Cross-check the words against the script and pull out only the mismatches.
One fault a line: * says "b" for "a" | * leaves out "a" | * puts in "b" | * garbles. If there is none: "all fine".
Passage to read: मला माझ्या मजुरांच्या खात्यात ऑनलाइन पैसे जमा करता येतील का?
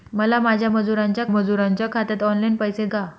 * puts in "मजुरांच्या"
* leaves out "जमा करता येतील"